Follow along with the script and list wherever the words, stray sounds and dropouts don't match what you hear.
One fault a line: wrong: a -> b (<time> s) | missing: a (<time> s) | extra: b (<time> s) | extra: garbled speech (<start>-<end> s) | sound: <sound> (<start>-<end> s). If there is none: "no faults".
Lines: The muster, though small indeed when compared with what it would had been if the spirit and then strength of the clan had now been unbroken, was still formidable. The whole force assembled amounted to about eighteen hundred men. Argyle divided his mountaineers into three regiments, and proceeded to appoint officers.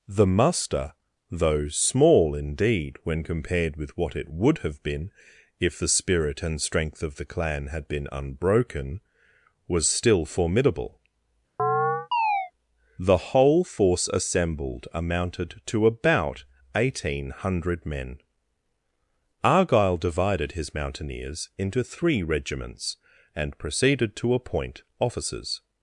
wrong: had -> have (4.6 s)
missing: then (6.6 s)
missing: now (7.9 s)
sound: chirp (11.6-12.5 s)